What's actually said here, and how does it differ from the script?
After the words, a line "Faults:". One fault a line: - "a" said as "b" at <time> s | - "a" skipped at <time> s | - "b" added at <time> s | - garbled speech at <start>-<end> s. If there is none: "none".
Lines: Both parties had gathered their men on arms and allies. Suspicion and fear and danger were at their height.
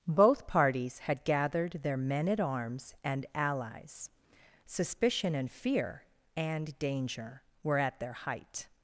Both parties had gathered their men at arms and allies. Suspicion and fear and danger were at their height.
Faults:
- "on" said as "at" at 2.3 s